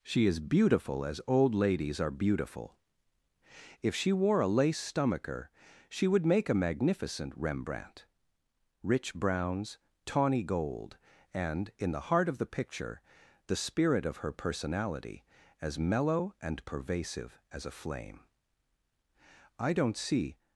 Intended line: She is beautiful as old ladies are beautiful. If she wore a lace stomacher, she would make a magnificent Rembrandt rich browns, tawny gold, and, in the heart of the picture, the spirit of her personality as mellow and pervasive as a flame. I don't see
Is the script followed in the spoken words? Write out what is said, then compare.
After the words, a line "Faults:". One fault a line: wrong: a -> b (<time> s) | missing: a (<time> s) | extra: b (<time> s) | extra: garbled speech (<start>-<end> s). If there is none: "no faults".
She is beautiful as old ladies are beautiful. If she wore a lace stomacher, she would make a magnificent Rembrandt rich browns, tawny gold, and, in the heart of the picture, the spirit of her personality as mellow and pervasive as a flame. I don't see
Faults:
no faults